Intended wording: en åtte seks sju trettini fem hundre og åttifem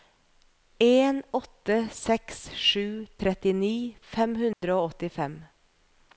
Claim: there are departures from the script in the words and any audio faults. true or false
true